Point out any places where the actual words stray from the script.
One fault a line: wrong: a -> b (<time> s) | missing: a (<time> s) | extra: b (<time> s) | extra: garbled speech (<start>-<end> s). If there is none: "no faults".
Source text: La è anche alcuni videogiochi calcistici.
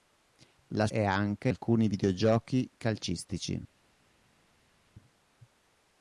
no faults